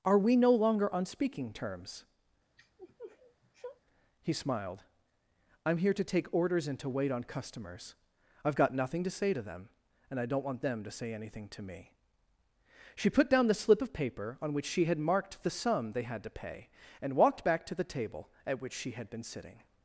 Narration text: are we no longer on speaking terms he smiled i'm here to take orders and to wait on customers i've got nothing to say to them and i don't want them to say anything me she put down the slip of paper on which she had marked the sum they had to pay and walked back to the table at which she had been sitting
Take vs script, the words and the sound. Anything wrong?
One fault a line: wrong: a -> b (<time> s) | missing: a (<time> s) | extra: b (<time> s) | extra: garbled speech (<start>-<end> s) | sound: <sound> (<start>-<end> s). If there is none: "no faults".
sound: sniff (2.6-3.8 s)
extra: to (11.5 s)